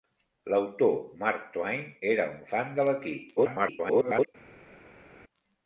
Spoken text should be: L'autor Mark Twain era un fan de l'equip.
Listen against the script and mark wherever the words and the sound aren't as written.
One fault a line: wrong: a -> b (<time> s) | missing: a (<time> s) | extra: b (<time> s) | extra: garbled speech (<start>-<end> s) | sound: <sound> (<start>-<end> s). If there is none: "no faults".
extra: garbled speech (3.4-4.3 s)